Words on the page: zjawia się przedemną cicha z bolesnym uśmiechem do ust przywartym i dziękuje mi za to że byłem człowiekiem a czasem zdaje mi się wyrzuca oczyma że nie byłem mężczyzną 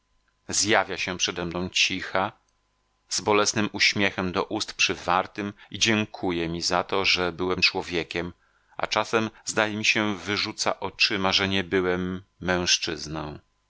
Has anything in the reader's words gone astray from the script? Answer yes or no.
no